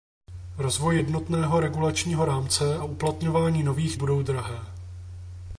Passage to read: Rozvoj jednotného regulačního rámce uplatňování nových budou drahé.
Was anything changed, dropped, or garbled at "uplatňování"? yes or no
no